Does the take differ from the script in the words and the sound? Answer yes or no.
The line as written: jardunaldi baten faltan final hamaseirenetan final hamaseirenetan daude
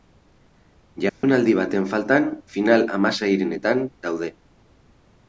yes